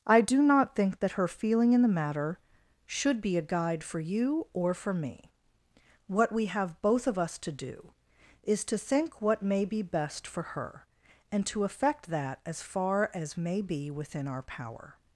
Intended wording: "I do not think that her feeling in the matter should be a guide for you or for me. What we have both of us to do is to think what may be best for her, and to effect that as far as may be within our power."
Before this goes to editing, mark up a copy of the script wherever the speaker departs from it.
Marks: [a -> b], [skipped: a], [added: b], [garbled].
"I do not think that her feeling in the matter should be a guide for you or for me. What we have both of us to do is to think what may be best for her, and to effect that as far as may be within our power."